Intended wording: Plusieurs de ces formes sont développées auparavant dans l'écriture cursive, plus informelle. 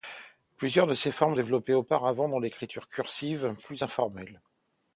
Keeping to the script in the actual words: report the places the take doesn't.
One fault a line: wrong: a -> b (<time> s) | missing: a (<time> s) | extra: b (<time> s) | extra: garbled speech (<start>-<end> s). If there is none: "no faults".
missing: sont (1.4 s)